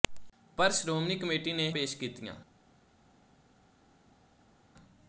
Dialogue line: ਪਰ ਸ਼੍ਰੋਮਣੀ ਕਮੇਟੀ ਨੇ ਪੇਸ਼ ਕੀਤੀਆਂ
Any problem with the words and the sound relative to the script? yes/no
no